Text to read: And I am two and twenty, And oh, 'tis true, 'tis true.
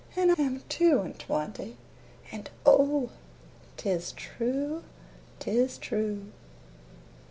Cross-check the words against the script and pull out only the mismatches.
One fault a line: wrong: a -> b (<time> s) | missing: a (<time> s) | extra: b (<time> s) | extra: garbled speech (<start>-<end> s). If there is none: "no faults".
missing: I (0.3 s)